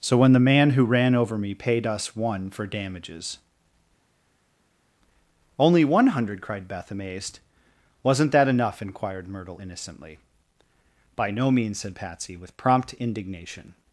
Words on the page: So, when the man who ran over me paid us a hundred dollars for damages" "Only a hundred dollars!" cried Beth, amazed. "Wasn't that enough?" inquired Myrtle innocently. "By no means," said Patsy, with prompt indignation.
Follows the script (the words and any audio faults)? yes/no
no